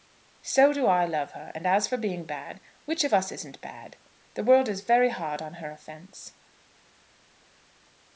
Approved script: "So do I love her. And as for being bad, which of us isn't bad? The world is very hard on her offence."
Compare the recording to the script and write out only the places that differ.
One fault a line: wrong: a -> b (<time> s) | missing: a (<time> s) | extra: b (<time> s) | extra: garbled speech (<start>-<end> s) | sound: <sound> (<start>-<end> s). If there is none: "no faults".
no faults